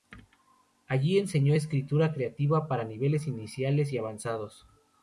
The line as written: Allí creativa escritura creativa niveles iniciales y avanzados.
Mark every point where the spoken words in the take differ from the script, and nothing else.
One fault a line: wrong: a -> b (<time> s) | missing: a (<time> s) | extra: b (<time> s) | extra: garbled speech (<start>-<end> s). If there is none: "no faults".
wrong: creativa -> enseñó (1.2 s)
extra: para (2.7 s)